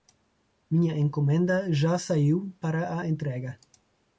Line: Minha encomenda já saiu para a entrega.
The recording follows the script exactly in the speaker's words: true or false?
true